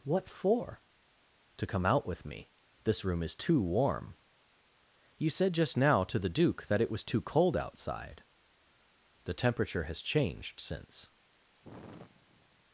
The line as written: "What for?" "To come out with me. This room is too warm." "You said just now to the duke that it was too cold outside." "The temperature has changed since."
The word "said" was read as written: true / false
true